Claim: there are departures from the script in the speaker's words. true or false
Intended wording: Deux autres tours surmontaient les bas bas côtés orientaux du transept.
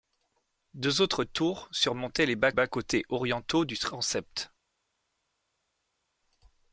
false